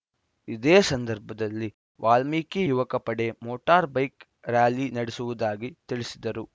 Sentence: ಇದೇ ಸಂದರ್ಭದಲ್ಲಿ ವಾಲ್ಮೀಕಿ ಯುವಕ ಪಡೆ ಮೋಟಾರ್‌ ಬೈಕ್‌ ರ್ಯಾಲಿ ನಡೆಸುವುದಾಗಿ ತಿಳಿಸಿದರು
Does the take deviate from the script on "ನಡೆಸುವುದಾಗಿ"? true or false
false